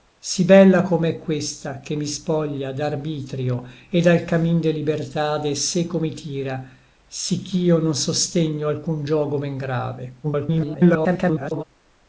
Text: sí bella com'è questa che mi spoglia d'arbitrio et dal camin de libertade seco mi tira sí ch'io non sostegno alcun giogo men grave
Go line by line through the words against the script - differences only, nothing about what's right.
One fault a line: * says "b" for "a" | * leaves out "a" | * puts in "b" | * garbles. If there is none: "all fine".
* garbles